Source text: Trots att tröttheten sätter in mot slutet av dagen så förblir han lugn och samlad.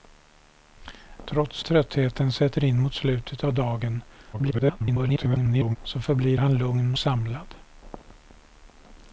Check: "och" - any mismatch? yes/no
yes